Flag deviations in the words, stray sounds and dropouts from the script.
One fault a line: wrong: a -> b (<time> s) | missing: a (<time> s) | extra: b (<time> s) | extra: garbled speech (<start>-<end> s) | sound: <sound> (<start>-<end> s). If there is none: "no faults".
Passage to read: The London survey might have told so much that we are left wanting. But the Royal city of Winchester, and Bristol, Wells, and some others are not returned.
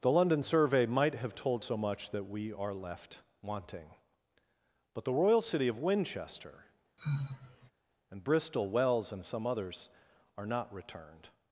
sound: sigh (7.0-7.7 s)